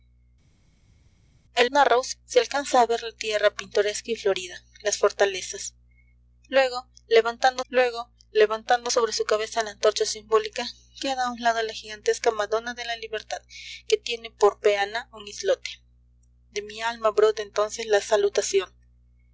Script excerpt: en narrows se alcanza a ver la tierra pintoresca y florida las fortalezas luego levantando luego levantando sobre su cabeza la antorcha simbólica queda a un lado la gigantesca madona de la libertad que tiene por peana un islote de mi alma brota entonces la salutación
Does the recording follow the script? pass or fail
pass